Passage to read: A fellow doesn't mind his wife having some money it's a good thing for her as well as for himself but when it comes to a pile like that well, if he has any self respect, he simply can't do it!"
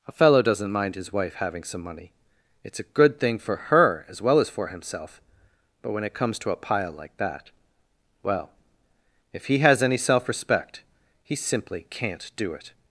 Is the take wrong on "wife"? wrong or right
right